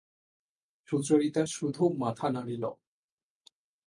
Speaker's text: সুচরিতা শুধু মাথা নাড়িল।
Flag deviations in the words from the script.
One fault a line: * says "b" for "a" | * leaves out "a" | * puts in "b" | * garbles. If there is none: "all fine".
all fine